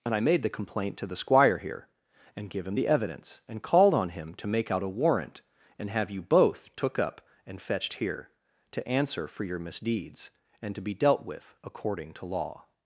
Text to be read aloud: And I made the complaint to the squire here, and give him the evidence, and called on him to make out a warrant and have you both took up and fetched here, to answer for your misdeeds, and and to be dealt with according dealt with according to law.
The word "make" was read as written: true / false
true